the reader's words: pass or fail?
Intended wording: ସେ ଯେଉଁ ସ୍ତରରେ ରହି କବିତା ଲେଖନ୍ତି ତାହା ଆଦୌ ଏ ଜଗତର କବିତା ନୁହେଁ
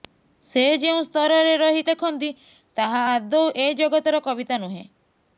fail